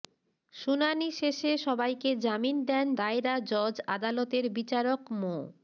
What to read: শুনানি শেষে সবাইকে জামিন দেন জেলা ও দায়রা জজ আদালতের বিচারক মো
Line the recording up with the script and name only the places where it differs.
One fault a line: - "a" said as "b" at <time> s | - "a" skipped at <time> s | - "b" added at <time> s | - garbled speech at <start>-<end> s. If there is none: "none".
- "জেলা ও" skipped at 2.9 s